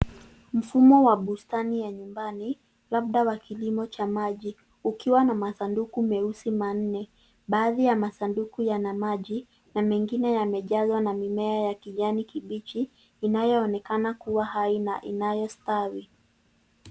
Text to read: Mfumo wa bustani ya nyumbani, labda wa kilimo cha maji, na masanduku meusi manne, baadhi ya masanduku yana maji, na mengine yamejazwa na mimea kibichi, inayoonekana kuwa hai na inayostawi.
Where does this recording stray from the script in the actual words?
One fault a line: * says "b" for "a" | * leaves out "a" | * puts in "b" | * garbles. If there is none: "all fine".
* puts in "ukiwa"
* puts in "ya kijani"